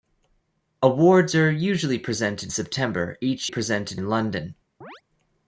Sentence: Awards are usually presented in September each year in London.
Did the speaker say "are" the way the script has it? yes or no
yes